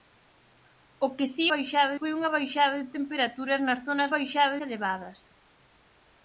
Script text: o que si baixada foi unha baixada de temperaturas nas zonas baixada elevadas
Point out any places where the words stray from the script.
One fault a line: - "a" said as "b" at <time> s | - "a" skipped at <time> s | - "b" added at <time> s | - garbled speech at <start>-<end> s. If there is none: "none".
none